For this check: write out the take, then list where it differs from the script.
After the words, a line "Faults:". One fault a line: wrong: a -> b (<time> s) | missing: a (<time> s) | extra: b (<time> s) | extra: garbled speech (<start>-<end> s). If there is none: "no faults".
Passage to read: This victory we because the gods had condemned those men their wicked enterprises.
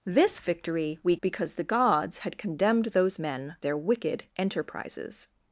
This victory we because the gods had condemned those men their wicked enterprises.
Faults:
no faults